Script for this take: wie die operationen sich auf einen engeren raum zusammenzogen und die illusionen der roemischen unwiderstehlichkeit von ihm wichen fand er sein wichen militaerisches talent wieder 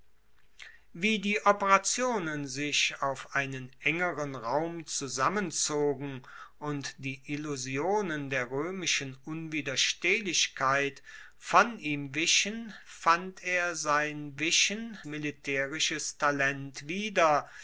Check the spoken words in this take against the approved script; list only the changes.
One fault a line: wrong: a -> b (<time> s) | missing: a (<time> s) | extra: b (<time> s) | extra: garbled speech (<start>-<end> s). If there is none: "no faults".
no faults